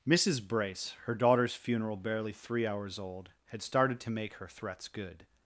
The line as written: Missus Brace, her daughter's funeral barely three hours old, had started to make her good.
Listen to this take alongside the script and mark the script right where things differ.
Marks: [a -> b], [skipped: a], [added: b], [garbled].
Missus Brace, her daughter's funeral barely three hours old, had started to make her [added: threats] good.